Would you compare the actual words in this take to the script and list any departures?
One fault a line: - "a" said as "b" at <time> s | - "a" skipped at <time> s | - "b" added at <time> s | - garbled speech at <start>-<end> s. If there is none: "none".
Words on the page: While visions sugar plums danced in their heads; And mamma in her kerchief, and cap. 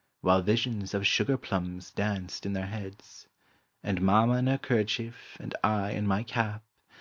- "of" added at 0.9 s
- "I in my" added at 5.6 s